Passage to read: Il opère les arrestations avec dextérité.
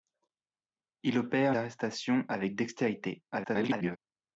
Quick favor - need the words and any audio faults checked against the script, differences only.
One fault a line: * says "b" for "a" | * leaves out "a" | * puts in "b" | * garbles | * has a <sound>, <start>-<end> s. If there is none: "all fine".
* leaves out "les"
* garbles